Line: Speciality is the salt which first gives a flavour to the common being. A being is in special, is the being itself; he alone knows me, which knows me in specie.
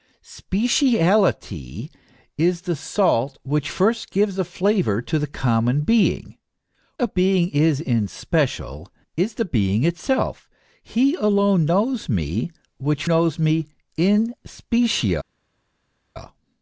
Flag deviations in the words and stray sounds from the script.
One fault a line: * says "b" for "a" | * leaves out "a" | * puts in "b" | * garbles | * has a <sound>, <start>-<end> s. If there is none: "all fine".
all fine